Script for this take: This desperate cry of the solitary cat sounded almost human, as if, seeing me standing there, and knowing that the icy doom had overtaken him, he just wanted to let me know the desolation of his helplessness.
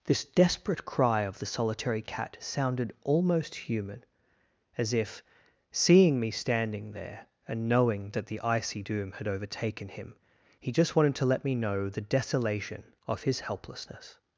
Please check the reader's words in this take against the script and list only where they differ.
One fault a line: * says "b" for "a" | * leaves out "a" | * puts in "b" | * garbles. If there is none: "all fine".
all fine